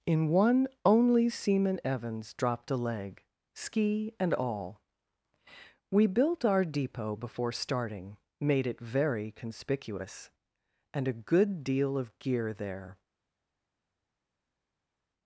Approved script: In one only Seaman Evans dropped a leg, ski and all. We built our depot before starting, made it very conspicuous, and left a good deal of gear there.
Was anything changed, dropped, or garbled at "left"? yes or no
yes